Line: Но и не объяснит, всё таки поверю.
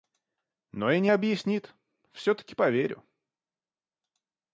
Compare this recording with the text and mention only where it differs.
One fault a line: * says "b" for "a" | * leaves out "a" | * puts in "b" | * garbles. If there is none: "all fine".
all fine